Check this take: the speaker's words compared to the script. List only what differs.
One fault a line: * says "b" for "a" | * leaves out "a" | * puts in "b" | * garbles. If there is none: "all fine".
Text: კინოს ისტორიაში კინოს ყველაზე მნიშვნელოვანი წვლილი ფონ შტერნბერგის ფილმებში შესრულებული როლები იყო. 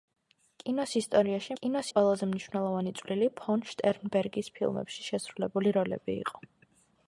all fine